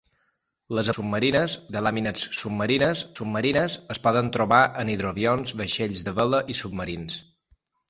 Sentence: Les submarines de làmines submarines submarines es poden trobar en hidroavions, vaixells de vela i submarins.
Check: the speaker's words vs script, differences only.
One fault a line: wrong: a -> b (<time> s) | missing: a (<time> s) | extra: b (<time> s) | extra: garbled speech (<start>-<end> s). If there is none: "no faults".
no faults